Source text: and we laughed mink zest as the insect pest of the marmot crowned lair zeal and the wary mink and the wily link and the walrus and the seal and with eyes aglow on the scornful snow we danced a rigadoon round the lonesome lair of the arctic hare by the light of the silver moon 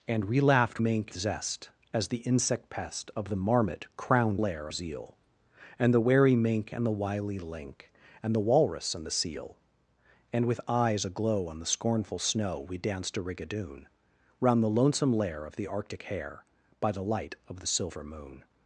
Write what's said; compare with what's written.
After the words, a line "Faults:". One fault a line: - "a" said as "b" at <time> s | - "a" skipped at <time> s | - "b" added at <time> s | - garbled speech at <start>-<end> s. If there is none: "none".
and we laughed mink zest as the insect pest of the marmot crowned lair zeal and the wary mink and the wily link and the walrus and the seal and with eyes aglow on the scornful snow we danced a rigadoon round the lonesome lair of the arctic hare by the light of the silver moon
Faults:
none